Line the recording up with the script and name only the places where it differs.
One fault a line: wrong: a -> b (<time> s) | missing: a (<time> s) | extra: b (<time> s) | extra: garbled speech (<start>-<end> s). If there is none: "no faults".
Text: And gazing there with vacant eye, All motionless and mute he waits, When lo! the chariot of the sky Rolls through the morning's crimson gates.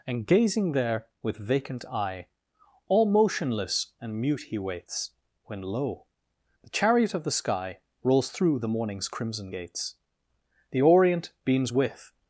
extra: The orient beams with (10.7 s)